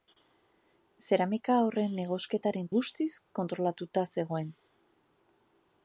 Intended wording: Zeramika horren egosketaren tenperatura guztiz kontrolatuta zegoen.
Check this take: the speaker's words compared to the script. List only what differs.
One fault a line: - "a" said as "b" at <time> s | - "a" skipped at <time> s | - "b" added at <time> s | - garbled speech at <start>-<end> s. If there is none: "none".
- "tenperatura" skipped at 2.7 s